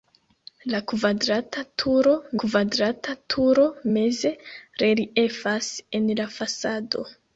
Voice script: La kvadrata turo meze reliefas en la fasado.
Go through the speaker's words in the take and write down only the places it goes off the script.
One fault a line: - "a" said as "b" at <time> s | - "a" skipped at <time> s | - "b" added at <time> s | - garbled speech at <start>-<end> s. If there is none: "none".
- "kvadrata turo" added at 2.4 s